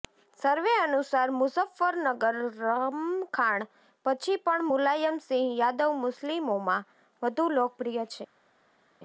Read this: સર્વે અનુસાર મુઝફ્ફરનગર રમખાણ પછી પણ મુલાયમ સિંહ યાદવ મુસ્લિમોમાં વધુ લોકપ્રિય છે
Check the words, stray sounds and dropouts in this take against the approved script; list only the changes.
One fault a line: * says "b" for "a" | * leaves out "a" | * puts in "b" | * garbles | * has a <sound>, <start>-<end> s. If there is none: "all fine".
all fine